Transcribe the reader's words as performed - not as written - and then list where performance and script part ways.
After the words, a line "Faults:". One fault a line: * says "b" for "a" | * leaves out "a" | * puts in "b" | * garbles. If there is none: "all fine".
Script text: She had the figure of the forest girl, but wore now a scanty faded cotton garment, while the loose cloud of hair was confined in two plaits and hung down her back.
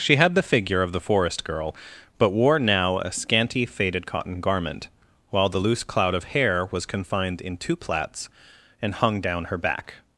She had the figure of the forest girl, but wore now a scanty faded cotton garment, while the loose cloud of hair was confined in two plaits and hung down her back.
Faults:
all fine